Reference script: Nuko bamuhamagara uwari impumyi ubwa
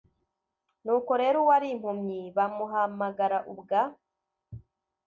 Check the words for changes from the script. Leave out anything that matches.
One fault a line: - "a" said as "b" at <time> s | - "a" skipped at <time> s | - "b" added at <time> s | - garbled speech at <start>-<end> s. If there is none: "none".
- "bamuhamagara" said as "rero" at 1.2 s
- "bamuhamagara" added at 2.4 s